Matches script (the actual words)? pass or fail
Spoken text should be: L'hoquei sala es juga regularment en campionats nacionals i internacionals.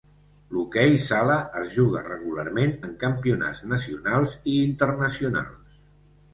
pass